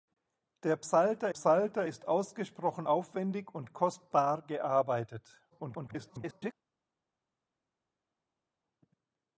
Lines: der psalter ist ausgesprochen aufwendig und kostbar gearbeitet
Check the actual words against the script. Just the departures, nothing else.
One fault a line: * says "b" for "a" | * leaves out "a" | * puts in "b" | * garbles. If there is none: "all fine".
* puts in "psalter"
* garbles